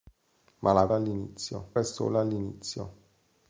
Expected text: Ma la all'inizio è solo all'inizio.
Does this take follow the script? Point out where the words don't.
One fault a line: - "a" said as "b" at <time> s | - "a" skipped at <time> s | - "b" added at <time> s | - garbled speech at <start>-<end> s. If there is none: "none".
none